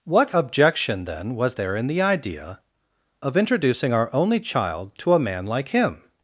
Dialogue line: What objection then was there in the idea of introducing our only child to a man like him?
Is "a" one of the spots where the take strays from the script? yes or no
no